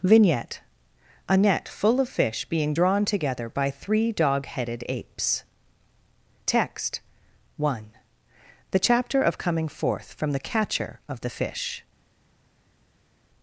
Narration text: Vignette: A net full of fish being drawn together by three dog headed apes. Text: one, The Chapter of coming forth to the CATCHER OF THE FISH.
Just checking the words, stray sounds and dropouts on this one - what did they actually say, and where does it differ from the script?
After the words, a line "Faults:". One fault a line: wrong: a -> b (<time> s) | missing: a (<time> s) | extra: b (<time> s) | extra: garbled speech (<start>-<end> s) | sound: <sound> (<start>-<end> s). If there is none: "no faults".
Vignette: A net full of fish being drawn together by three dog headed apes. Text: one, The Chapter of coming forth from the CATCHER OF THE FISH.
Faults:
wrong: to -> from (10.1 s)